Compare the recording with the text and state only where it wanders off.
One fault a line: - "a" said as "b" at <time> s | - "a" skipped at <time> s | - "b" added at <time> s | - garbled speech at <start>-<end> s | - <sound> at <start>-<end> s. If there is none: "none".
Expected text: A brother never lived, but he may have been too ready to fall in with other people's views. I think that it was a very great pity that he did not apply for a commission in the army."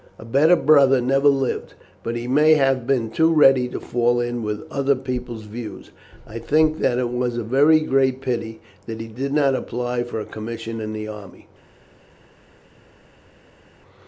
- "better" added at 0.2 s